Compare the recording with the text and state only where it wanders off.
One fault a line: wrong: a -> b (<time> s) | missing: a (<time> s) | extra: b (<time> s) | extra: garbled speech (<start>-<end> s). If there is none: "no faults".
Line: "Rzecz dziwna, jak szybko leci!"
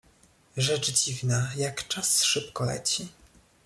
extra: czas (1.9 s)